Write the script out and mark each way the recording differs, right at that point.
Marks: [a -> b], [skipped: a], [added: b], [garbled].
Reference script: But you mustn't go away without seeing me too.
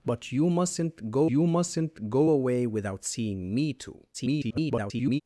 But you mustn't go [added: you mustn't go] away without seeing me too. [garbled]